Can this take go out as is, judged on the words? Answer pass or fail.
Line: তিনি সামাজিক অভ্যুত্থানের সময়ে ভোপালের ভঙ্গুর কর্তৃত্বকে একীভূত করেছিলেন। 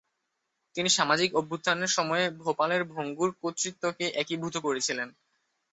pass